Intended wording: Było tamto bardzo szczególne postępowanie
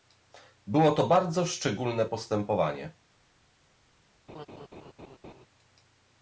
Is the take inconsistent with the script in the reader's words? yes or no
yes